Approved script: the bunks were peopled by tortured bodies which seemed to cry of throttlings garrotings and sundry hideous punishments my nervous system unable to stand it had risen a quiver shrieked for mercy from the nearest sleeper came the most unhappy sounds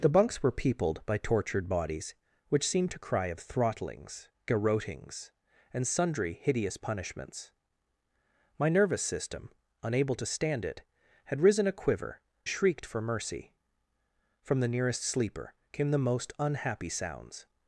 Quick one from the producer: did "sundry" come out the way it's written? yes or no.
yes